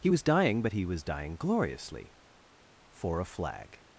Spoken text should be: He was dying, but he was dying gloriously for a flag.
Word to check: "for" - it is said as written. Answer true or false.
true